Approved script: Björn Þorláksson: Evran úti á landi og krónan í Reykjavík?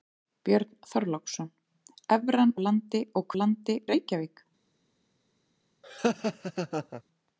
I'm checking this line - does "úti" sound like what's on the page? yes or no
no